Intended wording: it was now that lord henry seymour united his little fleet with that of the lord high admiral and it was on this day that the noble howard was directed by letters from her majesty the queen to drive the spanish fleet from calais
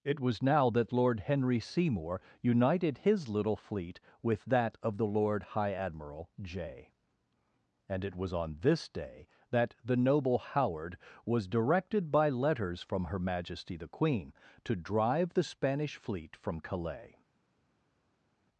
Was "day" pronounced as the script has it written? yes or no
yes